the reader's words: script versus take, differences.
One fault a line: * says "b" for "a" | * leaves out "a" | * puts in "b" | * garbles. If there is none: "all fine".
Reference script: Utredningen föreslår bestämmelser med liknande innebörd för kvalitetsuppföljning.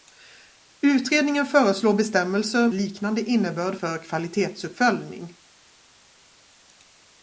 * leaves out "med"